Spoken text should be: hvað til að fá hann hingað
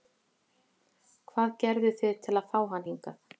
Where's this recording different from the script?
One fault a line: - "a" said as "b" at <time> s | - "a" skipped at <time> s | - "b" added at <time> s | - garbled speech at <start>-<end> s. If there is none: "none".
- "gerðuð þið" added at 1.6 s